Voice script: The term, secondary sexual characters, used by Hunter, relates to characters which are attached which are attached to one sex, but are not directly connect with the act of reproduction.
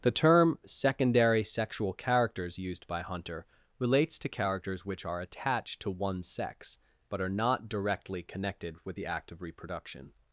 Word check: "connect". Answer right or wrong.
wrong